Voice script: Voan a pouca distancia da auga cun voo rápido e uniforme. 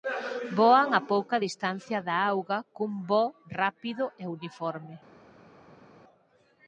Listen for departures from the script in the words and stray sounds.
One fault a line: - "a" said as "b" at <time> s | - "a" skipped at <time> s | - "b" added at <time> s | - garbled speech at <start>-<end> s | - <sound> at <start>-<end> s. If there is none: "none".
none